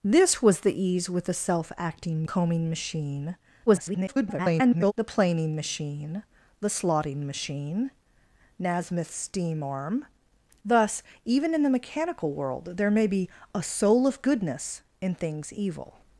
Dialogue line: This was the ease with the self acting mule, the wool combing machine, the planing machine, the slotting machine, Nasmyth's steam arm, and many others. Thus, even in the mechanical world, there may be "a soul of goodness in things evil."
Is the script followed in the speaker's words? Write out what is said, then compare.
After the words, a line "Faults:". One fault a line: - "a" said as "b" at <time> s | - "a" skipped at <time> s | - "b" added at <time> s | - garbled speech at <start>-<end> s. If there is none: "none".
This was the ease with the self acting combing machine, [garbled] the planing machine, the slotting machine, Nasmyth's steam arm. Thus, even in the mechanical world, there may be "a soul of goodness in things evil."
Faults:
- "mule the wool" skipped at 2.2 s
- garbled speech at 3.7-4.9 s
- "and many others" skipped at 10.1 s